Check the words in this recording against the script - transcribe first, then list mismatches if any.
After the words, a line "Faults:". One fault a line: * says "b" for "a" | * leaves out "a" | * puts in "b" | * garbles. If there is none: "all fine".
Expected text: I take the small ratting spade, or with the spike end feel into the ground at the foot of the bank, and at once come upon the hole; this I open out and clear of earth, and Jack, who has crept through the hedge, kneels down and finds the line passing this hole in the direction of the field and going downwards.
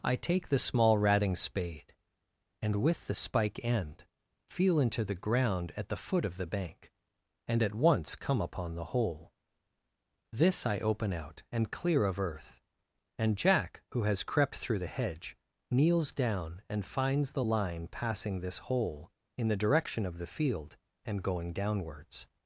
I take the small ratting spade, and with the spike end feel into the ground at the foot of the bank, and at once come upon the hole; this I open out and clear of earth, and Jack, who has crept through the hedge, kneels down and finds the line passing this hole in the direction of the field and going downwards.
Faults:
* says "and" for "or"